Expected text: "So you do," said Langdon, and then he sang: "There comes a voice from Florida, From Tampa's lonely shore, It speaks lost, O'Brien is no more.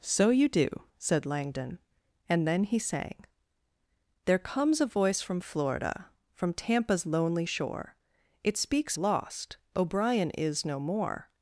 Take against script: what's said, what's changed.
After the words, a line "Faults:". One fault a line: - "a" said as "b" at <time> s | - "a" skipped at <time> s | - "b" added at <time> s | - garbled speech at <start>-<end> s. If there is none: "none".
"So you do," said Langdon, and then he sang: "There comes a voice from Florida, From Tampa's lonely shore, It speaks lost, O'Brien is no more.
Faults:
none